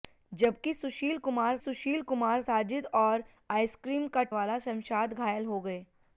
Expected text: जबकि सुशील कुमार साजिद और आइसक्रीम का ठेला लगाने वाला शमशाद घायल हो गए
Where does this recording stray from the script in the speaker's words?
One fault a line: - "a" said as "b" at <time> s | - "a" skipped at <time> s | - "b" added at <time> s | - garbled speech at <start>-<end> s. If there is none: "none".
- "सुशील कुमार" added at 1.6 s
- "ठेला लगाने" skipped at 4.2 s